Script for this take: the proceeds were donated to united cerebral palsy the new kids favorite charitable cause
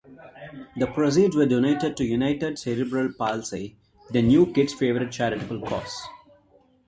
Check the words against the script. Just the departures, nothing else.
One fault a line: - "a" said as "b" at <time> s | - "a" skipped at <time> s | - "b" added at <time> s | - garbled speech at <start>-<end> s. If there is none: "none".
none